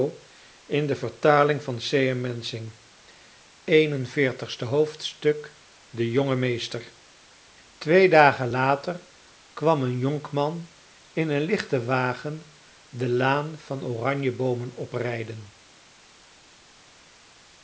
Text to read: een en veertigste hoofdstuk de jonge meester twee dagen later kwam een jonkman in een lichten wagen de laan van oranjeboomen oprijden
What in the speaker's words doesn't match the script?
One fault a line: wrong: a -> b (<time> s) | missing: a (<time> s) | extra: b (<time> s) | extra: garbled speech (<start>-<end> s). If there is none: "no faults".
no faults